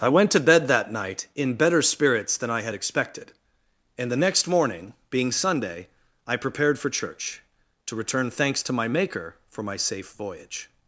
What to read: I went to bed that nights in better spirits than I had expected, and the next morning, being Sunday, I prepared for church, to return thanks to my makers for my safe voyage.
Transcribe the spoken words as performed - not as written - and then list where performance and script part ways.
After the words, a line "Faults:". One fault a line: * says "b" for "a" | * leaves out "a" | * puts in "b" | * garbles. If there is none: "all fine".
I went to bed that night in better spirits than I had expected, and the next morning, being Sunday, I prepared for church, to return thanks to my maker for my safe voyage.
Faults:
* says "night" for "nights"
* says "maker" for "makers"